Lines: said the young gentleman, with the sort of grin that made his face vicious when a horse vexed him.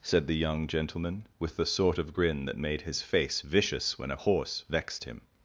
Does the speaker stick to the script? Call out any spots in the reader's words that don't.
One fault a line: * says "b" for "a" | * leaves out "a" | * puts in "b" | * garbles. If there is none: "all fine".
all fine